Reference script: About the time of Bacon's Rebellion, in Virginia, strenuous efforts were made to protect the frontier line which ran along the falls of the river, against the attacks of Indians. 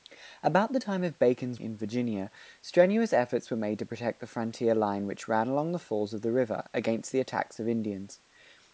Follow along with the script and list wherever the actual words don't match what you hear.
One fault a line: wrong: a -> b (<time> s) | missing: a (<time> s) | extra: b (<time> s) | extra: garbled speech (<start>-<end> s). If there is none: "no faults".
missing: Rebellion (1.6 s)